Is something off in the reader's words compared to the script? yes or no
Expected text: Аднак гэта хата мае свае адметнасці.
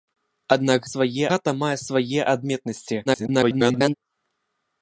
yes